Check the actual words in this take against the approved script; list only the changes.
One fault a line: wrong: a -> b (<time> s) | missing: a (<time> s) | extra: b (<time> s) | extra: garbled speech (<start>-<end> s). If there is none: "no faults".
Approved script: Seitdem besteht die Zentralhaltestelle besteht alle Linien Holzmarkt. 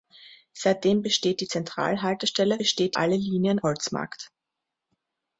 no faults